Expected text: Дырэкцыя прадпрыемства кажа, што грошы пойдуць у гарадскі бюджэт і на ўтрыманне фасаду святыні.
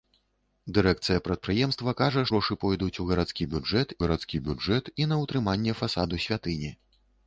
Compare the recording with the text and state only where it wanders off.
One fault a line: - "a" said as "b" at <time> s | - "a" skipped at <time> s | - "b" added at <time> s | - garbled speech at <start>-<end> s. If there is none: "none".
- "што" skipped at 2.2 s
- "гарадскі бюджэт" added at 4.0 s